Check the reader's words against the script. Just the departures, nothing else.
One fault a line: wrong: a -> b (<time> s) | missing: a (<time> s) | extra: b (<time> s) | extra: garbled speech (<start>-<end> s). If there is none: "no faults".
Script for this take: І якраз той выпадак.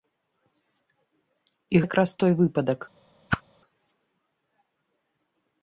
no faults